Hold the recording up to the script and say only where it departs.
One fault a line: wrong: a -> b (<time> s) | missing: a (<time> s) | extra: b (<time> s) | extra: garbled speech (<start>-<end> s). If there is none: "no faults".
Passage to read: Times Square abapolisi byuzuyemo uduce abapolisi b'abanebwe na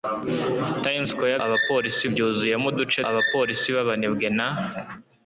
no faults